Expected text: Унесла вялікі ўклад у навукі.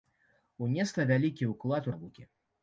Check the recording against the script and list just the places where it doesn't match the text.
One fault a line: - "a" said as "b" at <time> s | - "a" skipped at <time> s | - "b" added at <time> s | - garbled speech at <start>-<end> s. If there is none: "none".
none